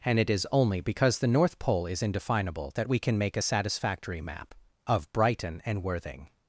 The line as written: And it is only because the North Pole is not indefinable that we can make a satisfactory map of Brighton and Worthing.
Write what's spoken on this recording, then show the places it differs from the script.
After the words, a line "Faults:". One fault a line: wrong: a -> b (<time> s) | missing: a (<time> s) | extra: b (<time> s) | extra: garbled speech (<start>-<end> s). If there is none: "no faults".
And it is only because the North Pole is indefinable that we can make a satisfactory map of Brighton and Worthing.
Faults:
missing: not (2.0 s)